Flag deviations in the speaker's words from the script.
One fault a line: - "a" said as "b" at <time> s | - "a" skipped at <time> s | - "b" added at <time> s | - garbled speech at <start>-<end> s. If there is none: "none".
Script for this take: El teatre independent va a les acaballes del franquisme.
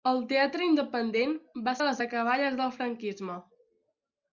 none